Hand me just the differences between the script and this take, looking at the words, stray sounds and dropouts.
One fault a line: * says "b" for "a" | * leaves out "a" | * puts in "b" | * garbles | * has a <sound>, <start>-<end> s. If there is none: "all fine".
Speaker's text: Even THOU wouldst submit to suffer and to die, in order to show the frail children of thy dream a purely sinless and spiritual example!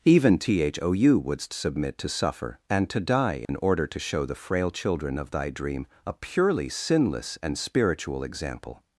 * has a dropout, 3.4-3.5 s